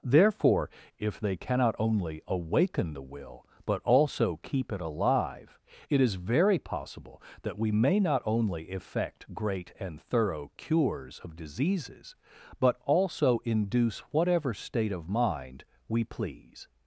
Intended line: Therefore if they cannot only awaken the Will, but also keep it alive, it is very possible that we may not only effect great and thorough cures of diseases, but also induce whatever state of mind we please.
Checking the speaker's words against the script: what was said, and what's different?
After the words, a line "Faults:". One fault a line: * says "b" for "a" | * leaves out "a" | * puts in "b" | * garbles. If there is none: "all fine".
Therefore if they cannot only awaken the Will, but also keep it alive, it is very possible that we may not only effect great and thorough cures of diseases, but also induce whatever state of mind we please.
Faults:
all fine